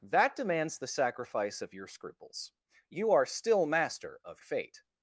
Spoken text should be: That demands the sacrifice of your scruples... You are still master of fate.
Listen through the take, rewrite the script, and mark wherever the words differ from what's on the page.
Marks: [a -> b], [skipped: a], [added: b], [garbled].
That demands the sacrifice of your scruples... You are still master of fate.